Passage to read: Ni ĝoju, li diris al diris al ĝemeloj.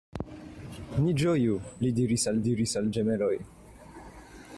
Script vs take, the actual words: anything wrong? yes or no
no